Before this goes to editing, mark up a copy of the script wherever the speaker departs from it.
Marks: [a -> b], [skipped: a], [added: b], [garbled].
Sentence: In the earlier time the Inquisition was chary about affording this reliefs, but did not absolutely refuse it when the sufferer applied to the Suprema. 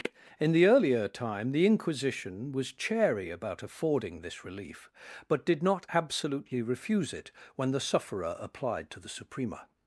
In the earlier time the Inquisition was chary about affording this [reliefs, -> relief] but did not absolutely refuse it when the sufferer applied to the Suprema.